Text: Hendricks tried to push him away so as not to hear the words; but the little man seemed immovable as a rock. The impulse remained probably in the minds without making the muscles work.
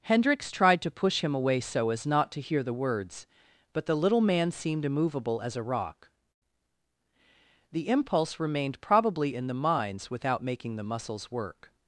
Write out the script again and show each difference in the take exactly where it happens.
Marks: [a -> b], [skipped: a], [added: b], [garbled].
Hendricks tried to push him away so as not to hear the words; but the little man seemed immovable as a rock. The impulse remained probably in the minds without making the muscles work.